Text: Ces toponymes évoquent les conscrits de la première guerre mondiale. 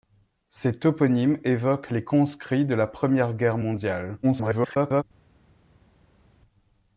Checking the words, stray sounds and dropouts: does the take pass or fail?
fail